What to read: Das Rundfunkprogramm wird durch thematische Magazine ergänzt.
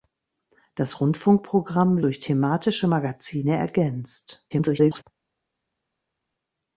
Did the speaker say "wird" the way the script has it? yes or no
no